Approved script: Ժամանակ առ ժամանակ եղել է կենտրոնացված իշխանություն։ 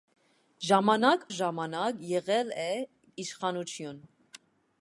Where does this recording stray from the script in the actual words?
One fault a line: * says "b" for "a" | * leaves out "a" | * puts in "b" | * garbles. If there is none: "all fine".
* leaves out "առ"
* leaves out "կենտրոնացված"